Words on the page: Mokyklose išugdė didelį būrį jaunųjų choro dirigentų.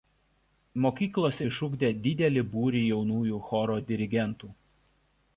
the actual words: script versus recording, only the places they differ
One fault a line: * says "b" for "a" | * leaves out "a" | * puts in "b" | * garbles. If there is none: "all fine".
all fine